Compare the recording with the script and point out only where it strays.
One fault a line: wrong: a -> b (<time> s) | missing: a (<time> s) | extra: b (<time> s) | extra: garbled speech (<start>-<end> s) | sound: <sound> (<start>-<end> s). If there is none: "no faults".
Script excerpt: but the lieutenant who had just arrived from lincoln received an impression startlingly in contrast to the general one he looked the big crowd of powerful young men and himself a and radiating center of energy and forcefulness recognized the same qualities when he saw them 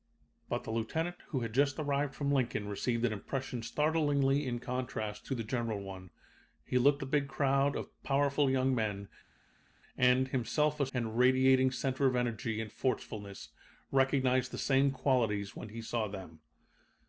no faults